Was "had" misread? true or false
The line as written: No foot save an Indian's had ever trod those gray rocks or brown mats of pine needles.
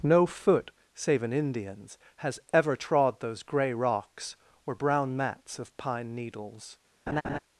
true